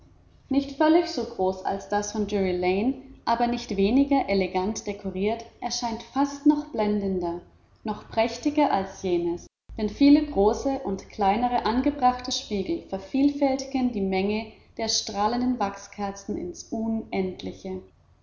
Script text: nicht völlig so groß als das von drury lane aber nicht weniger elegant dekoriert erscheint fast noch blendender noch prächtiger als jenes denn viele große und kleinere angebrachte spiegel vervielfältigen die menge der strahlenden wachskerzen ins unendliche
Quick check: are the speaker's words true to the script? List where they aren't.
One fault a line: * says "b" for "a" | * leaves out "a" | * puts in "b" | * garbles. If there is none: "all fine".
all fine